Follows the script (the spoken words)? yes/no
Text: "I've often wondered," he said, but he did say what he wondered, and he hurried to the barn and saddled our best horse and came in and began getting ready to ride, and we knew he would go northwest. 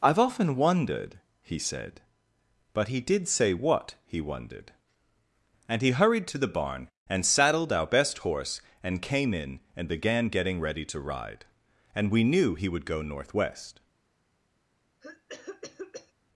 yes